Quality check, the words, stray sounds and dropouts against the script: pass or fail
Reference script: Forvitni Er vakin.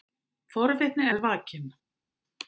pass